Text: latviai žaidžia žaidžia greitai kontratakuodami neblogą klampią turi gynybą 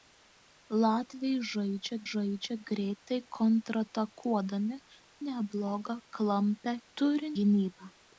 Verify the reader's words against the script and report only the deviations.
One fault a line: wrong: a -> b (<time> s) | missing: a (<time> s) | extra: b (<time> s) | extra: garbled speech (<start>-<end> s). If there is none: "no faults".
no faults